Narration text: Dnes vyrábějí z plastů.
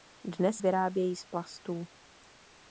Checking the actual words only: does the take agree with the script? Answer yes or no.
yes